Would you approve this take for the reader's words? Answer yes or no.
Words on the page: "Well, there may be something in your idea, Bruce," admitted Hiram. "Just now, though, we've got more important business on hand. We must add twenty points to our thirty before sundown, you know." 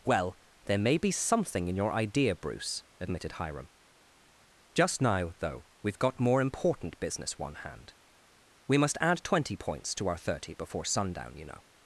no